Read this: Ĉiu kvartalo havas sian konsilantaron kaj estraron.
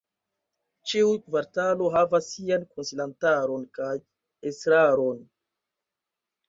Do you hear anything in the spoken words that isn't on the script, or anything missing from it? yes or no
no